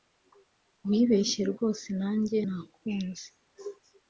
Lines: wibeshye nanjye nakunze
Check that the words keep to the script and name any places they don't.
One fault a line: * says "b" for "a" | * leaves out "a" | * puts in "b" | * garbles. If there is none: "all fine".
* puts in "rwose"